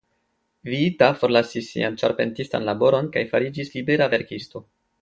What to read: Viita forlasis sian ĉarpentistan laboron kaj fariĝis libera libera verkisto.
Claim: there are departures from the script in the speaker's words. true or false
true